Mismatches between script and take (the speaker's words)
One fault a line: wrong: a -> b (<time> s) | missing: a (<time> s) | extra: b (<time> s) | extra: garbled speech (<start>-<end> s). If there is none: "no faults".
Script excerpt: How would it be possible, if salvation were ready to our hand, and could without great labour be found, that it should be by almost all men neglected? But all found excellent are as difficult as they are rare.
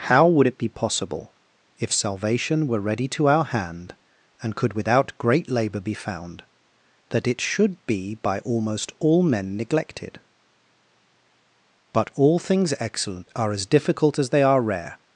wrong: found -> things (12.4 s)